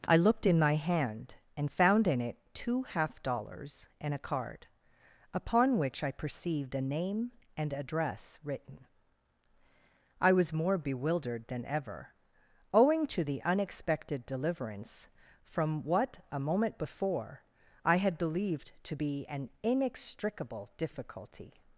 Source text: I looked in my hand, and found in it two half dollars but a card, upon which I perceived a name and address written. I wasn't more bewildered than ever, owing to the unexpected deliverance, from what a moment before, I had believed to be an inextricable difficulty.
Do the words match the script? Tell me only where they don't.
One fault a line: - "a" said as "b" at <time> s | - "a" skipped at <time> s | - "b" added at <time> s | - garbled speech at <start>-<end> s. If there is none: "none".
- "but" said as "and" at 4.0 s
- "wasn't" said as "was" at 10.3 s